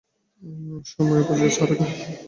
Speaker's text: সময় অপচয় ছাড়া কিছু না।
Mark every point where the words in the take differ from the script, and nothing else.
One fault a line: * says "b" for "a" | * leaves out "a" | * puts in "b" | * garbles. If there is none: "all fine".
* leaves out "কিছু"